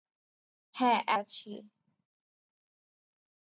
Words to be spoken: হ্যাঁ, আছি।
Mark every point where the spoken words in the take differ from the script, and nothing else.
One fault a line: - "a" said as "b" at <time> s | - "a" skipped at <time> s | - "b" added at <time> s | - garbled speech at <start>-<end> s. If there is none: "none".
none